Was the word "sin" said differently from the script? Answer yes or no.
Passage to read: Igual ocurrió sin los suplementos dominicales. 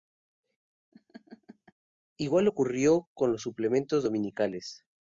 yes